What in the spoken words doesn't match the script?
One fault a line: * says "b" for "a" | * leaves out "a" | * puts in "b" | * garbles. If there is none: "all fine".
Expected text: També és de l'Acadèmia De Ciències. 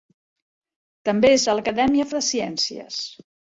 all fine